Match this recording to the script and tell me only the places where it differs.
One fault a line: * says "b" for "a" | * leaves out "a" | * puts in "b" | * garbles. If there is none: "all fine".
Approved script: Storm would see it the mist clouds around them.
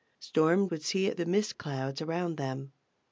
all fine